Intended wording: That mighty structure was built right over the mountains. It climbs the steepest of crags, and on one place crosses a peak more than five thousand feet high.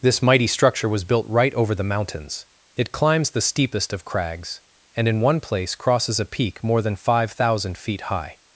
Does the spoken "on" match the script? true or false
false